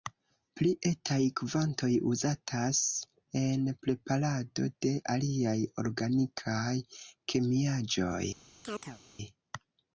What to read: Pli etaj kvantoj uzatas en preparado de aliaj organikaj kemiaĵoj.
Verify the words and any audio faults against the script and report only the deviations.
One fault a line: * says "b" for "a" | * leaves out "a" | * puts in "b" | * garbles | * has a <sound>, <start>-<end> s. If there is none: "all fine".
* has a chirp, 8.6-9.0 s